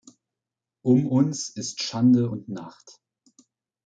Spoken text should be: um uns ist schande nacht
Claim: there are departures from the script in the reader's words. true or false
true